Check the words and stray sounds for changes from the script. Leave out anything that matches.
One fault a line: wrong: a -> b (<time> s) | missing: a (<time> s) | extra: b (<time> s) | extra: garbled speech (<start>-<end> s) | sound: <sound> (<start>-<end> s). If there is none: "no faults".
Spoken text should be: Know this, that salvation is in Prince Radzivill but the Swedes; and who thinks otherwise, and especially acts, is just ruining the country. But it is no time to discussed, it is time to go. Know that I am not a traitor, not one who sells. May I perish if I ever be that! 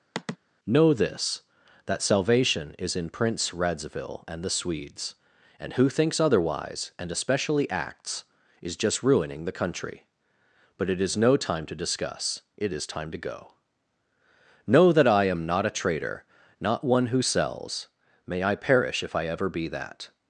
sound: sigh (0.1-0.4 s)
wrong: but -> and (4.3 s)
wrong: discussed -> discuss (11.8 s)